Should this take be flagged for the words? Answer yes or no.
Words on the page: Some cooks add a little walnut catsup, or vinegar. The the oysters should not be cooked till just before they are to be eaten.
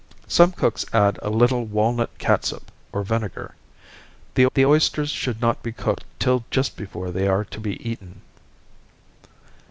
no